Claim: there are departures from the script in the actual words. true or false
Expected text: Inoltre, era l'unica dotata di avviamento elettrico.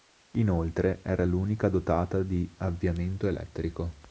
false